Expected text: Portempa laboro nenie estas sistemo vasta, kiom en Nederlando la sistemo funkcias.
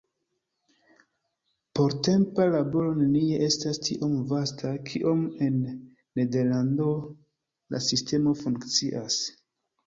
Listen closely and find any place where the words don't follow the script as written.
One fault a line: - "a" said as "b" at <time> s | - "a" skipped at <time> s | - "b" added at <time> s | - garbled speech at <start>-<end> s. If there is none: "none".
- "sistemo" said as "tiom" at 3.9 s